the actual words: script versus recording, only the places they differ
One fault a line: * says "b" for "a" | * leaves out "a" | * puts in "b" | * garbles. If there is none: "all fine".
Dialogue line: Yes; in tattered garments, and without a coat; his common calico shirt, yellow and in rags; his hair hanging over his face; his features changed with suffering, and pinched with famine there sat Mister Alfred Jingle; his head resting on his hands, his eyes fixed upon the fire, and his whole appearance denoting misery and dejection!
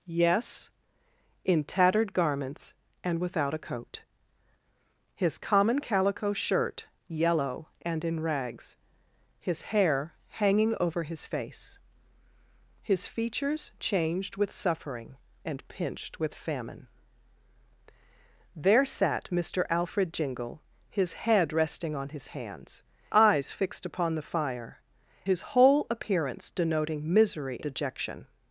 * leaves out "his"
* leaves out "and"
* leaves out "and"